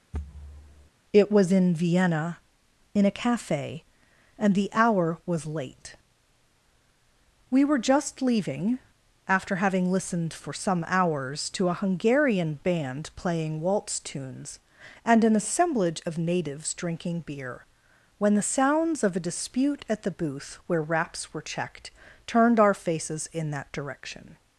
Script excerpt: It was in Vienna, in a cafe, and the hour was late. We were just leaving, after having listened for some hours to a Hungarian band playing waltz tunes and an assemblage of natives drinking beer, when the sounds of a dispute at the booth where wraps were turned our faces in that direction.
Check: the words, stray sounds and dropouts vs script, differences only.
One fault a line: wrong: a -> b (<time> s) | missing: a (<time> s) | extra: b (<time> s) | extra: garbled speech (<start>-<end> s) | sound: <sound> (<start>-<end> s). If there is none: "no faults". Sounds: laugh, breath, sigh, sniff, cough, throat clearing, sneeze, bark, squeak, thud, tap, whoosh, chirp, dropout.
sound: thud (0.1-0.9 s)
extra: checked (21.4 s)